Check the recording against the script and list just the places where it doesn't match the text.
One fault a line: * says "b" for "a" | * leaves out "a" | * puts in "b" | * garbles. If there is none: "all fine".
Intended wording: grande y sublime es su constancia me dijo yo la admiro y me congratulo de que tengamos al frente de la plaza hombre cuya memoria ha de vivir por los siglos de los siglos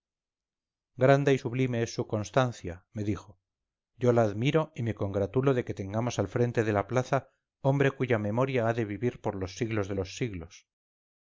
all fine